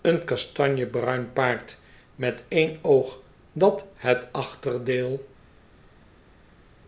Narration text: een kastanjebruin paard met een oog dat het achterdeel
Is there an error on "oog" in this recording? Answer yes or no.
no